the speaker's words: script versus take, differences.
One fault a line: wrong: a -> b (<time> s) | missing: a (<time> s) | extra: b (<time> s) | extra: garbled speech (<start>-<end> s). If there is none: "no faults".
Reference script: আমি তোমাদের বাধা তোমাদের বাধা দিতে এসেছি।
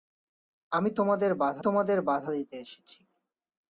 no faults